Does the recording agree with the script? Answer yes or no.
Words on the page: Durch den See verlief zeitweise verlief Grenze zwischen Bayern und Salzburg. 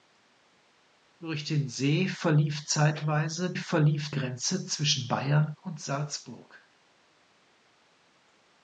yes